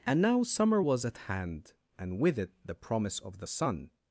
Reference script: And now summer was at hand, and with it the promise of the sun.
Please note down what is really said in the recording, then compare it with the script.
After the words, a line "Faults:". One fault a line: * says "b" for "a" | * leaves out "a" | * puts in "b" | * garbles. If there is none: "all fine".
And now summer was at hand, and with it the promise of the sun.
Faults:
all fine